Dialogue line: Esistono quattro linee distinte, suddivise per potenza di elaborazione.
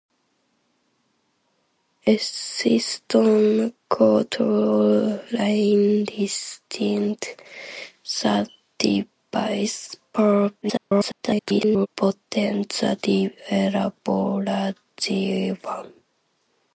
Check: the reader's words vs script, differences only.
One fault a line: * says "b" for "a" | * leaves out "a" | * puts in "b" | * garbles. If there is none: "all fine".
* garbles